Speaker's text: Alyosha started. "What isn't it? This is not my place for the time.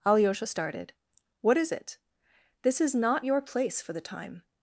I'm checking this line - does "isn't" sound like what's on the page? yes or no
no